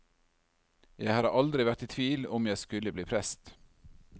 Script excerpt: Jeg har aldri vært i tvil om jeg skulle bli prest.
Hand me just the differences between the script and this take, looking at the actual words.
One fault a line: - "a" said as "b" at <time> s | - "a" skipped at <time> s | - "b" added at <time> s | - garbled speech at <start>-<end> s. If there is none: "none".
none